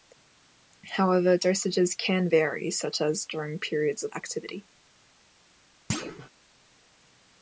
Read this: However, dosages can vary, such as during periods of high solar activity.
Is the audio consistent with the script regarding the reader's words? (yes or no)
no